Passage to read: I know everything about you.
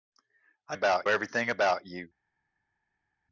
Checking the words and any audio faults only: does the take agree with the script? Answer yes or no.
no